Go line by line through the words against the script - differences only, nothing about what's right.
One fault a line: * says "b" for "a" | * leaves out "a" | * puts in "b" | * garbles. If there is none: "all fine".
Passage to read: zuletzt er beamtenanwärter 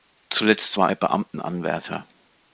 * puts in "war"